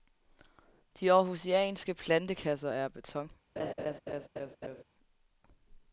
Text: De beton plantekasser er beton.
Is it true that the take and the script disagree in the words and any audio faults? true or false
true